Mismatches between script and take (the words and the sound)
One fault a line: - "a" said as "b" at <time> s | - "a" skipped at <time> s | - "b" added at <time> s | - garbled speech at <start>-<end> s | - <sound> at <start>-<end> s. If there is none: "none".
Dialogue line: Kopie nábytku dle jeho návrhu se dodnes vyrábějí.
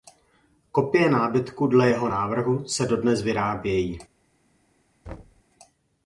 - thud at 5.1-5.4 s